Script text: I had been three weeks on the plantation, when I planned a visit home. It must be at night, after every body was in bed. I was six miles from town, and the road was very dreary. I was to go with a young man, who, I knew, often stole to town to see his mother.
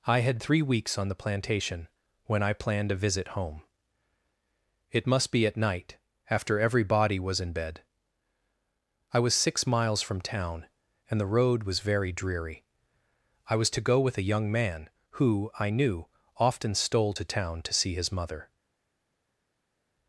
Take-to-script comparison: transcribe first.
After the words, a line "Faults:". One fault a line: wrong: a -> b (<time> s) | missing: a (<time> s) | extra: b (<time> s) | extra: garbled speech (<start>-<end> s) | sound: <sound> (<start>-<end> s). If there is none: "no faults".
I had three weeks on the plantation, when I planned a visit home. It must be at night, after every body was in bed. I was six miles from town, and the road was very dreary. I was to go with a young man, who, I knew, often stole to town to see his mother.
Faults:
missing: been (0.4 s)